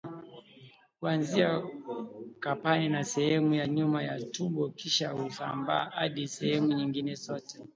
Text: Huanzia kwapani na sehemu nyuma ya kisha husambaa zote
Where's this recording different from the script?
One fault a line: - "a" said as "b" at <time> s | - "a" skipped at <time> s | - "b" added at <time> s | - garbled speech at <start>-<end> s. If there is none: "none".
- "ya" added at 3.5 s
- "tumbo" added at 4.2 s
- "hadi sehemu nyingine" added at 5.9 s